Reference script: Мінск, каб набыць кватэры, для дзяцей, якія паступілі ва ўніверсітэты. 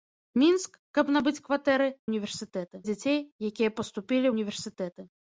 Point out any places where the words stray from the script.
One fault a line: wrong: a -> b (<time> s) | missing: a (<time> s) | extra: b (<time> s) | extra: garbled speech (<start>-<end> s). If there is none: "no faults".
wrong: для -> ўніверсітэты (2.1 s)
missing: ва (4.3 s)